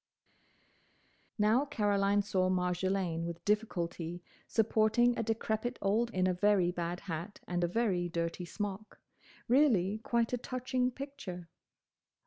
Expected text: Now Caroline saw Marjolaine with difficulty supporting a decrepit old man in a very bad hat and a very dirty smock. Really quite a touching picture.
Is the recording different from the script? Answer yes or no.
yes